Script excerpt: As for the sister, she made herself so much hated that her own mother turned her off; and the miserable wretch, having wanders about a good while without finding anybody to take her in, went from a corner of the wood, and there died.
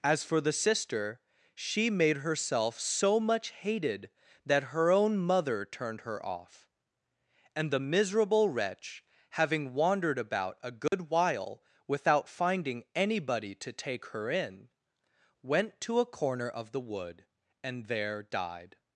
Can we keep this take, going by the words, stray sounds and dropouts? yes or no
no